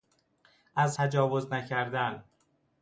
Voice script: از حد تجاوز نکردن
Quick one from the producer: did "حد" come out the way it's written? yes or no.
no